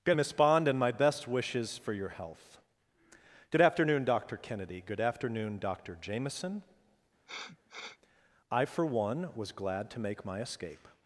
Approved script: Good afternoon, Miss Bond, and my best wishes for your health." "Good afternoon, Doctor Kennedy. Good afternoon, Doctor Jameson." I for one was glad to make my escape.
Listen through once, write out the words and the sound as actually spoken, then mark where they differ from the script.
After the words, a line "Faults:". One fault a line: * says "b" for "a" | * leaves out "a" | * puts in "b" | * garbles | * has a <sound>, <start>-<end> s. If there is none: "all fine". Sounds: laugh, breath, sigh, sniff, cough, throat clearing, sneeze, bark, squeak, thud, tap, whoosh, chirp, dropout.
Good Miss Bond, and my best wishes for your health." "Good afternoon, Doctor Kennedy. Good afternoon, Doctor Jameson." I for one was glad to make my escape.
Faults:
* leaves out "afternoon"
* has a sniff, 7.3-8.0 s